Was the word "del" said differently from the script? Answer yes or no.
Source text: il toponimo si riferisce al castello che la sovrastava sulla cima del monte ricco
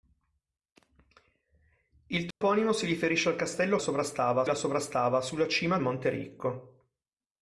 yes